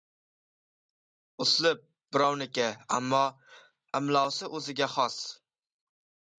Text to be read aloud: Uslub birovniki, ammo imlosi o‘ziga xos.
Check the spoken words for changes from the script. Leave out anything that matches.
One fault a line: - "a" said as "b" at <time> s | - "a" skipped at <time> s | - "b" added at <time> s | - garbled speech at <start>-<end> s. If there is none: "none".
none